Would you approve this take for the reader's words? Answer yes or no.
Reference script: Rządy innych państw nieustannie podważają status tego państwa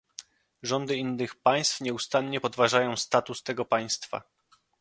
yes